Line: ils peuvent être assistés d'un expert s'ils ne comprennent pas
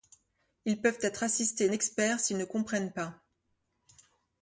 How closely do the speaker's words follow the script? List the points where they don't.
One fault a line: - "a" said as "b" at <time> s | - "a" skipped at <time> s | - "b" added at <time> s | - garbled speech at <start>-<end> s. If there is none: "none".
- "d'un" skipped at 1.7 s